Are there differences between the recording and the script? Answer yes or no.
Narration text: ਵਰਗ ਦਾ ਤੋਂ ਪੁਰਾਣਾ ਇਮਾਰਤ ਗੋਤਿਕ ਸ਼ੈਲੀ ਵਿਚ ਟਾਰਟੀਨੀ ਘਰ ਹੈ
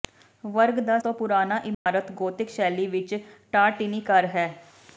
no